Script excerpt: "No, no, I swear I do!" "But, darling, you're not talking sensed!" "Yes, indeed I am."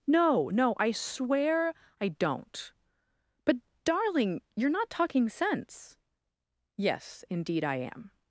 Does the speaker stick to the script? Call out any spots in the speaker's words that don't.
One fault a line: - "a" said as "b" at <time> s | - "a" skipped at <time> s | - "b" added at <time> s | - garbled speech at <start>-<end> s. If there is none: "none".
- "do" said as "don't" at 2.1 s
- "sensed" said as "sense" at 5.3 s